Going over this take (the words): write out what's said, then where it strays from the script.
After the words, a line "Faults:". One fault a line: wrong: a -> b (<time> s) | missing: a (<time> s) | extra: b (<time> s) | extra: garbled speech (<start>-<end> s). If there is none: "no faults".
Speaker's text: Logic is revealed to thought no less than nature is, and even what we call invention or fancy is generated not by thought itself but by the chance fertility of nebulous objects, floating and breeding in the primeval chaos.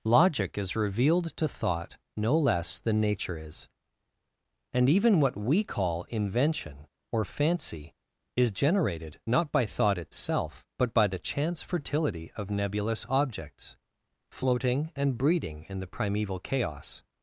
Logic is revealed to thought no less than nature is, and even what we call invention or fancy is generated not by thought itself but by the chance fertility of nebulous objects, floating and breeding in the primeval chaos.
Faults:
no faults